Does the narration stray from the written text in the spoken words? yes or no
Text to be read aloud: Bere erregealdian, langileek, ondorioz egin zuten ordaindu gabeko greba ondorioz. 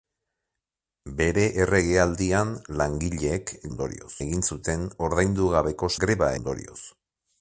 no